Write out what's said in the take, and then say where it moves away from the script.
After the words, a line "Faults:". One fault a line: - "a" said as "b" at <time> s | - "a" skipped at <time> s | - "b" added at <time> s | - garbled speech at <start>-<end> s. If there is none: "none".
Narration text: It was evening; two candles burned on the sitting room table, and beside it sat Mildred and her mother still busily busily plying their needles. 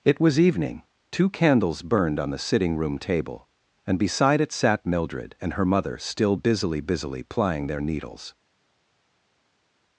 It was evening; two candles burned on the sitting room table, and beside it sat Mildred and her mother still busily busily plying their needles.
Faults:
none